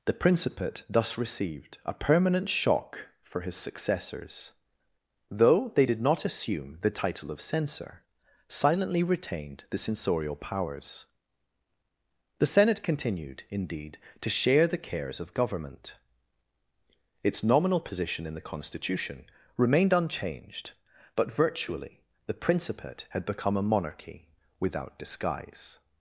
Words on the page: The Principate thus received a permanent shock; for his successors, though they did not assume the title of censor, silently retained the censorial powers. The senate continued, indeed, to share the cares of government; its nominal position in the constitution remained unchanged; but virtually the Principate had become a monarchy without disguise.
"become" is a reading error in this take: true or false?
false